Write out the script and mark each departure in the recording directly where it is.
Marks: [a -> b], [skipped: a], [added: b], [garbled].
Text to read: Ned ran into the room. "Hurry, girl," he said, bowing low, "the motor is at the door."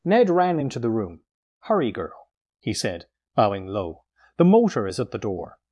Ned ran into the room. "Hurry, girl," he said, bowing low, "the motor is at the door."